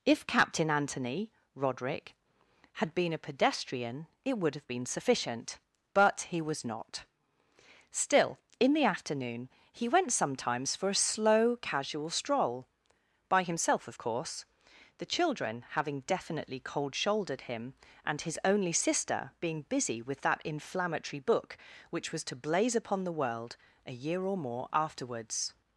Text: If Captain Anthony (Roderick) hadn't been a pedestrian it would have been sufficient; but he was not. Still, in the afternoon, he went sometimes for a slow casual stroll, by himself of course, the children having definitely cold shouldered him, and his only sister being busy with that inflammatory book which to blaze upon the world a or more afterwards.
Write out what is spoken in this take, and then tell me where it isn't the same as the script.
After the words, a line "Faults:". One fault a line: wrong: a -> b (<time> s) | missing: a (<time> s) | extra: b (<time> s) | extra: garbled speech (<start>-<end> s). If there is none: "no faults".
If Captain Anthony (Roderick) had been a pedestrian it would have been sufficient; but he was not. Still, in the afternoon, he went sometimes for a slow casual stroll, by himself of course, the children having definitely cold shouldered him, and his only sister being busy with that inflammatory book which was to blaze upon the world a year or more afterwards.
Faults:
wrong: hadn't -> had (2.8 s)
extra: was (22.1 s)
extra: year (23.9 s)